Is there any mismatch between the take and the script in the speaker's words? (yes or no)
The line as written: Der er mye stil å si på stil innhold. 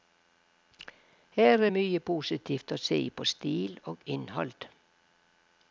yes